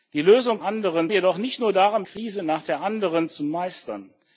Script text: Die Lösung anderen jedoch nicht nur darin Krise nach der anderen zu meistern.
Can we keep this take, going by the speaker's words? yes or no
yes